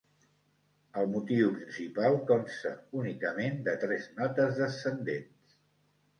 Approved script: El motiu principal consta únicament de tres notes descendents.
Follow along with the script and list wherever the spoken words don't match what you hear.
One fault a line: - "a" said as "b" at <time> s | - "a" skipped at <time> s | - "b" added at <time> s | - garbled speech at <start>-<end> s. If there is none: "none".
none